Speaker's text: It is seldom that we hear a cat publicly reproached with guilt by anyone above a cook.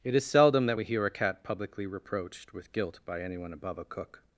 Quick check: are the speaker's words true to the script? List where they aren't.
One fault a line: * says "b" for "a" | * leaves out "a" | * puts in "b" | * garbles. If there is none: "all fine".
all fine